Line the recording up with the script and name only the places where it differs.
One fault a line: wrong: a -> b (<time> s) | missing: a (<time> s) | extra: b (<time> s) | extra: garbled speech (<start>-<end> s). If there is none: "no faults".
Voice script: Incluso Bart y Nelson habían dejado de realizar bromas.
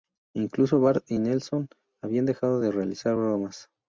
no faults